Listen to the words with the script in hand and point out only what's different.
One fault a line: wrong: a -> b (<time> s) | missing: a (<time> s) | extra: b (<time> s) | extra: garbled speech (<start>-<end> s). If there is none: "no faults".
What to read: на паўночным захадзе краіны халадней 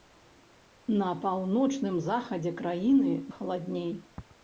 no faults